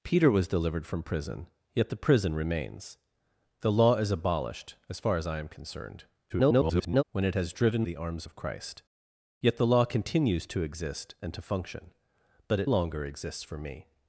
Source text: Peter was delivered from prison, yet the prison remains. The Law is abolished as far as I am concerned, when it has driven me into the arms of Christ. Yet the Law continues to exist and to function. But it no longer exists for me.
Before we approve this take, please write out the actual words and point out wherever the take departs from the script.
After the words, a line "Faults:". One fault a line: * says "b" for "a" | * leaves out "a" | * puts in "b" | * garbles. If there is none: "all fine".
Peter was delivered from prison, yet the prison remains. The Law is abolished as far as I am concerned, [garbled] when it has driven the arms of Christ. Yet the Law continues to exist and to function. But it longer exists for me.
Faults:
* garbles
* leaves out "me into"
* leaves out "no"